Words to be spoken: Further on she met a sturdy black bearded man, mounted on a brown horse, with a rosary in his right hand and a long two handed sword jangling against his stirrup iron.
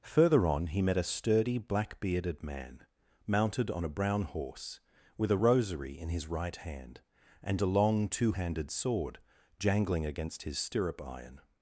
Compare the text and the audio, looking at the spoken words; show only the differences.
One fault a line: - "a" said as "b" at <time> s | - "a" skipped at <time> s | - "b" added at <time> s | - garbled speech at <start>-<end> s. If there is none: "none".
- "she" said as "he" at 0.7 s